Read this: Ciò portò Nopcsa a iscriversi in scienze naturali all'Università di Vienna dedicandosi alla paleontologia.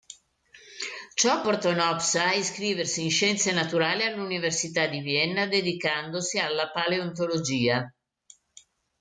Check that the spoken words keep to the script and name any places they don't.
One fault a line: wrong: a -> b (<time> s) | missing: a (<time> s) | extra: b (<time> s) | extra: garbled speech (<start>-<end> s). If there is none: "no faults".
no faults